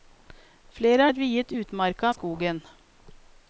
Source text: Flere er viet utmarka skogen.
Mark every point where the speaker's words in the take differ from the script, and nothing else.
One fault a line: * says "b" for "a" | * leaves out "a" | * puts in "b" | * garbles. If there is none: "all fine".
all fine